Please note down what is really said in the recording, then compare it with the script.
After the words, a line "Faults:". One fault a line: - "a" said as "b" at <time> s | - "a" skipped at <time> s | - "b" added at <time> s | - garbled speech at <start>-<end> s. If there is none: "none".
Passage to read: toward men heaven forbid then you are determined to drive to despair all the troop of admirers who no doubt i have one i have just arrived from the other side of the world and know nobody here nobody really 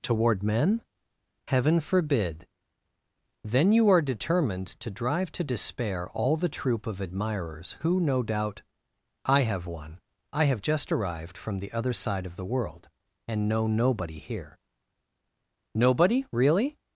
toward men heaven forbid then you are determined to drive to despair all the troop of admirers who no doubt i have one i have just arrived from the other side of the world and know nobody here nobody really
Faults:
none